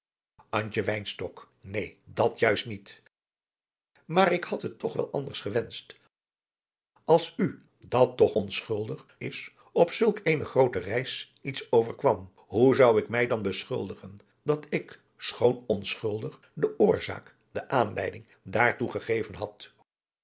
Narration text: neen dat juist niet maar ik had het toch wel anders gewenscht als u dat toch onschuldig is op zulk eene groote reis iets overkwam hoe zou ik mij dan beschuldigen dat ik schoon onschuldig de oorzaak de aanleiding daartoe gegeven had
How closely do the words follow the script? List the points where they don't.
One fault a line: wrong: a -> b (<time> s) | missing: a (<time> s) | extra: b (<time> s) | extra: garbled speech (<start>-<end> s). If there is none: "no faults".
no faults